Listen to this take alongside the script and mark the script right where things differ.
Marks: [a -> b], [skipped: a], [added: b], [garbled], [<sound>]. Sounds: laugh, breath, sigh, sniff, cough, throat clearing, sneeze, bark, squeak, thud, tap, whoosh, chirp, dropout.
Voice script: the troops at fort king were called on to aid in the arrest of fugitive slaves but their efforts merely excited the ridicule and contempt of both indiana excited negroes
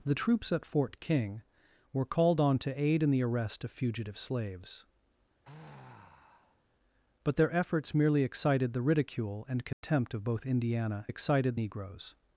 the troops at fort king were called on to aid in the arrest of fugitive slaves [sigh] but their efforts merely excited the ridicule and contempt [dropout] of both indiana excited negroes